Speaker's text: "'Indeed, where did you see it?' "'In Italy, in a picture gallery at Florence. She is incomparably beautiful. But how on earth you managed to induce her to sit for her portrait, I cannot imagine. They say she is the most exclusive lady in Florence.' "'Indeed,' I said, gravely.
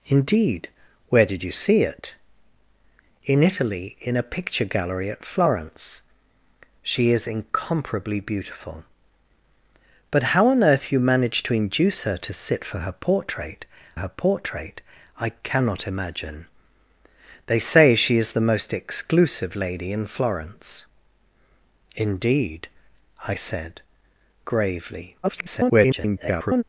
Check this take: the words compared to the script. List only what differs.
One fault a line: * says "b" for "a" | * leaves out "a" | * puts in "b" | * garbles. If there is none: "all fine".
* puts in "her portrait"
* garbles